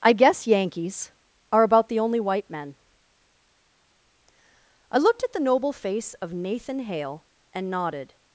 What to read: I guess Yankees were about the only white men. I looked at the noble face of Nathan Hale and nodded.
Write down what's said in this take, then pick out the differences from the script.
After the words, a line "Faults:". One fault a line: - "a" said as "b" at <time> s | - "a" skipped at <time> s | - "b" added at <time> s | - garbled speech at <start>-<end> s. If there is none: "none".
I guess Yankees are about the only white men. I looked at the noble face of Nathan Hale and nodded.
Faults:
- "were" said as "are" at 1.5 s